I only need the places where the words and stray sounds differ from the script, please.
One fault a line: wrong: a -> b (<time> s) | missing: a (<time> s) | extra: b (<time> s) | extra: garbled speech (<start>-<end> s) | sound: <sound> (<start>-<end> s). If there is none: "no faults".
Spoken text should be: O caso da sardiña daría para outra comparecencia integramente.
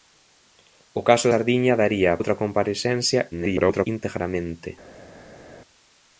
missing: da (1.3 s)
missing: para (2.1 s)
extra: garbled speech (3.3-3.9 s)